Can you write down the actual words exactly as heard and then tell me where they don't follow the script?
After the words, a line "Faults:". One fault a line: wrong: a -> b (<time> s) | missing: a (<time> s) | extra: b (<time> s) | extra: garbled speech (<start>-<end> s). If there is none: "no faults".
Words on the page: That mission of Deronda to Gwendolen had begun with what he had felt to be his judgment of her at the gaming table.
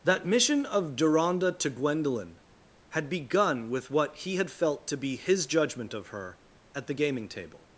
That mission of Deronda to Gwendolen had begun with what he had felt to be his judgment of her at the gaming table.
Faults:
no faults